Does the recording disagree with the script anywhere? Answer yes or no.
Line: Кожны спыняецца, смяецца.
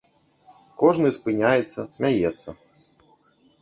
no